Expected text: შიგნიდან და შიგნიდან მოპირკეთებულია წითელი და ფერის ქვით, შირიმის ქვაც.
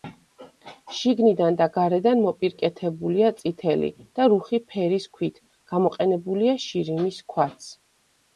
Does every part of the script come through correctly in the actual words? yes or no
no